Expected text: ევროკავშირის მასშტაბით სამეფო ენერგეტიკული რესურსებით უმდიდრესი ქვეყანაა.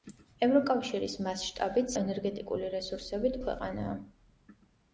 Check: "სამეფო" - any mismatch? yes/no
yes